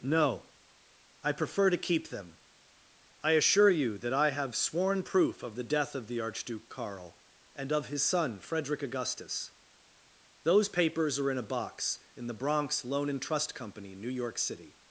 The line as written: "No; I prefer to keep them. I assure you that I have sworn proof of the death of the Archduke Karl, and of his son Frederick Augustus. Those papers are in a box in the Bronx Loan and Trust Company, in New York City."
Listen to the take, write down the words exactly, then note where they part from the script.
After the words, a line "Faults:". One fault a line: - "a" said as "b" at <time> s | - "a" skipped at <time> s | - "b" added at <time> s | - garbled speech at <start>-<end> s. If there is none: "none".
"No; I prefer to keep them. I assure you that I have sworn proof of the death of the Archduke Karl, and of his son Frederick Augustus. Those papers are in a box in the Bronx Loan and Trust Company, New York City."
Faults:
- "in" skipped at 13.9 s